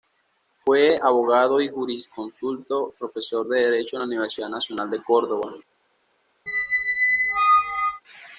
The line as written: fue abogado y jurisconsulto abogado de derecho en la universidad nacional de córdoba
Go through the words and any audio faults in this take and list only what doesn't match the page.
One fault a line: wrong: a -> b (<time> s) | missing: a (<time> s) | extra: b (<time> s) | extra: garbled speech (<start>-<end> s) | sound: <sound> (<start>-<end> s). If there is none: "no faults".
wrong: abogado -> profesor (3.0 s)
sound: squeak (6.5-8.0 s)